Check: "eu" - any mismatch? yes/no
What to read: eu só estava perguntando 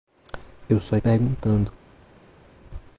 no